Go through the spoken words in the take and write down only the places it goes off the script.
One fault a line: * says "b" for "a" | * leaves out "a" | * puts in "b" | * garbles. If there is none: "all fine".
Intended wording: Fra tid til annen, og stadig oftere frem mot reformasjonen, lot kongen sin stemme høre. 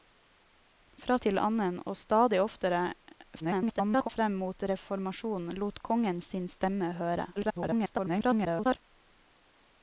* leaves out "tid"
* garbles
* garbles